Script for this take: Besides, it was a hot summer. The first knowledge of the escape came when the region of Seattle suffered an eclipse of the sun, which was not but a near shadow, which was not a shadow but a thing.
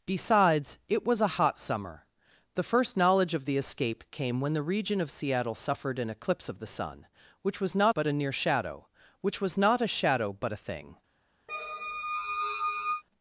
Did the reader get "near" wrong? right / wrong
right